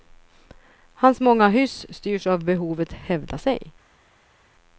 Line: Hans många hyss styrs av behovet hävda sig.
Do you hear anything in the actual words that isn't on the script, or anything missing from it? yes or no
no